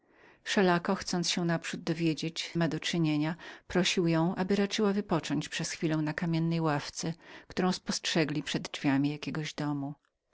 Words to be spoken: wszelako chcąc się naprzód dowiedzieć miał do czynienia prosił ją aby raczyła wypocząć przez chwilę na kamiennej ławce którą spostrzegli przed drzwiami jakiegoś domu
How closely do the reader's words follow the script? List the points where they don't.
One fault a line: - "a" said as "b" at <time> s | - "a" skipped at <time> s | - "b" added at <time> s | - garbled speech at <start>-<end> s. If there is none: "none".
none